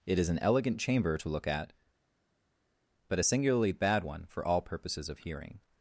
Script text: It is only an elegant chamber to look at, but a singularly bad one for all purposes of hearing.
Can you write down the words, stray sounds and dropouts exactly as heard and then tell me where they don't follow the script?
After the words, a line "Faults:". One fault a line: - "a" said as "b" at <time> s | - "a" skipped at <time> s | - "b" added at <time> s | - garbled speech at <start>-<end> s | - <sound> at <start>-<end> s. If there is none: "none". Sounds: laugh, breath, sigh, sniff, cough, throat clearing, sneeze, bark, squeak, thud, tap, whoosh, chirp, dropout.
It is an elegant chamber to look at, but a singularly bad one for all purposes of hearing.
Faults:
- "only" skipped at 0.3 s